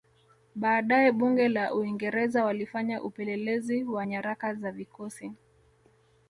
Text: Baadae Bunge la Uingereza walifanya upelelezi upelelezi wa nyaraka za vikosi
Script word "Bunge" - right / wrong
right